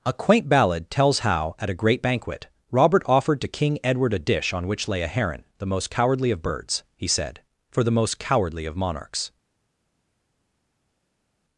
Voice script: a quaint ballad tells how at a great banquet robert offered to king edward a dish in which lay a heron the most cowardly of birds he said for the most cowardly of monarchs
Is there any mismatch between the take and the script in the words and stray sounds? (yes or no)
yes